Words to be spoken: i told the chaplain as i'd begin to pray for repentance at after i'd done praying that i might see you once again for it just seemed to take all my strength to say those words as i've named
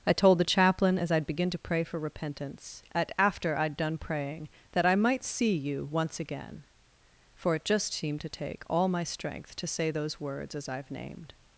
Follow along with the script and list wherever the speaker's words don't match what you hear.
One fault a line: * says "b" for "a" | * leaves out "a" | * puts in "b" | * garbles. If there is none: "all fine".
all fine